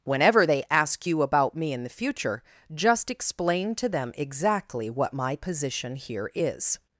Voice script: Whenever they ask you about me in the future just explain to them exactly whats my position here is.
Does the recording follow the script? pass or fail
fail